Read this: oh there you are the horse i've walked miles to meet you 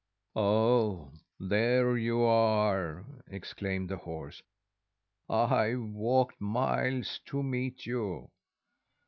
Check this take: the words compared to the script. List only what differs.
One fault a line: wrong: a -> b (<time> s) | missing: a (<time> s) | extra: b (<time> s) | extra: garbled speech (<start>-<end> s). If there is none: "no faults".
extra: exclaimed (3.3 s)